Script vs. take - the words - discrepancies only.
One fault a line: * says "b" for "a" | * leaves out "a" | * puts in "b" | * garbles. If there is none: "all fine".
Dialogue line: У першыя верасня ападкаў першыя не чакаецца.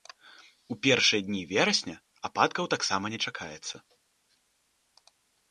* puts in "дні"
* says "таксама" for "першыя"